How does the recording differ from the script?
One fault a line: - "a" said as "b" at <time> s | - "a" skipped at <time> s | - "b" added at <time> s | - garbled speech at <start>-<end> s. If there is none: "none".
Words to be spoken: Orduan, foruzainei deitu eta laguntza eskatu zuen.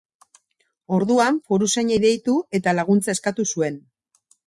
none